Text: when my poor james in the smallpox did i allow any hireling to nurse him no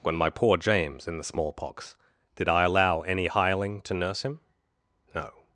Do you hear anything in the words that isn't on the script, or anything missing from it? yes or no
no